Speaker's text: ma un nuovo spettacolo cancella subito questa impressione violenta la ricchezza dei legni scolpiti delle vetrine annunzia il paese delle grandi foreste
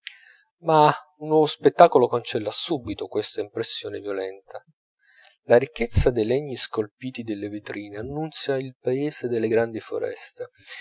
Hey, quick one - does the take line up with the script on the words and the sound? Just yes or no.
yes